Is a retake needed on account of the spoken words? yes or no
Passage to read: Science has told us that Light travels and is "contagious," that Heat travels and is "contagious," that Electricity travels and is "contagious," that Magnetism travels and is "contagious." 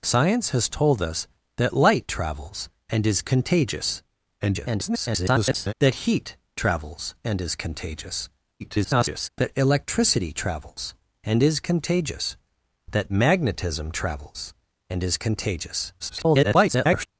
yes